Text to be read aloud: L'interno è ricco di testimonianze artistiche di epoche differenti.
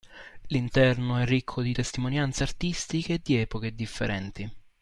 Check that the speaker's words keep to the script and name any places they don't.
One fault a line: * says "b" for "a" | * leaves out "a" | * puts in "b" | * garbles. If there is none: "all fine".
all fine